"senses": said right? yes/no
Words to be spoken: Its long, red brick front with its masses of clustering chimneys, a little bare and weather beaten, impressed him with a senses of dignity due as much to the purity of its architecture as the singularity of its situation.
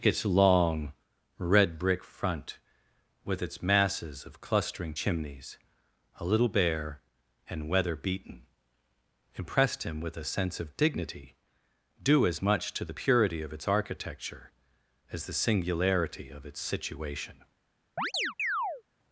no